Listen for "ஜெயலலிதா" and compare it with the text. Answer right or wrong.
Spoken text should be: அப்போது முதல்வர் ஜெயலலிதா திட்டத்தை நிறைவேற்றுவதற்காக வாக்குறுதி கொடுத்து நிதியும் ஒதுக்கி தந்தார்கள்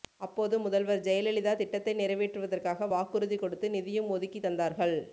right